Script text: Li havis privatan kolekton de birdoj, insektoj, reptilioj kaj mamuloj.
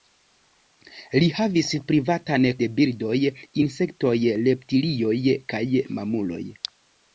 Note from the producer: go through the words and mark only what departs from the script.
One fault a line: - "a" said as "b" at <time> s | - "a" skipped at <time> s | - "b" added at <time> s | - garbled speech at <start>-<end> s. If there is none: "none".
- "kolekton" skipped at 2.5 s